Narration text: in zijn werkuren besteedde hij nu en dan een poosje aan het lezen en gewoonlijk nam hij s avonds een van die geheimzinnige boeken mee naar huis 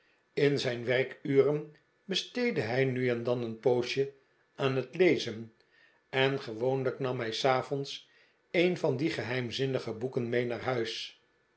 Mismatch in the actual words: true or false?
false